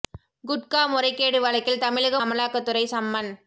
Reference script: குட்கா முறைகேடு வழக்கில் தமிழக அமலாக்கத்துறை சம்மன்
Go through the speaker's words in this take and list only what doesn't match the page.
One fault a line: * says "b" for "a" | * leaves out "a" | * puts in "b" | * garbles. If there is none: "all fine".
all fine